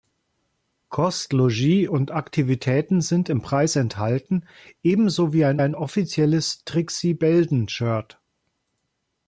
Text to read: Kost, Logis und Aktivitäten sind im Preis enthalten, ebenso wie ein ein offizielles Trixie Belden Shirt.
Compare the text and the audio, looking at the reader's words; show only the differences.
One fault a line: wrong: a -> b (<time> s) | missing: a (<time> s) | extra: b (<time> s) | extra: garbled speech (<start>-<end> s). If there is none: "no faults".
no faults